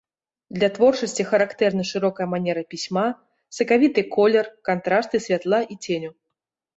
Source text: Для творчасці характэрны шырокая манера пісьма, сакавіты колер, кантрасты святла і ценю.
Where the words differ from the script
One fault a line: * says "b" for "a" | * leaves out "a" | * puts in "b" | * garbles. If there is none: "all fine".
all fine